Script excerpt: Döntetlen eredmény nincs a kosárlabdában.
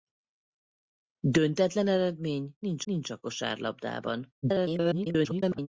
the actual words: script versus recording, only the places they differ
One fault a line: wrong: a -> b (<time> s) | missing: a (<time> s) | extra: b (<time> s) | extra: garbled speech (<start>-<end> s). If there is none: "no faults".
extra: nincs (2.8 s)
extra: garbled speech (4.4-5.7 s)